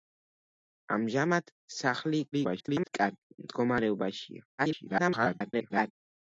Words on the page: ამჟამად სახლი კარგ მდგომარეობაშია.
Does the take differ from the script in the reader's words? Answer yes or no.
yes